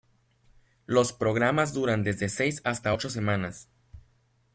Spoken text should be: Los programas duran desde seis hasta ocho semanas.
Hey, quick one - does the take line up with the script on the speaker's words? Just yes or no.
yes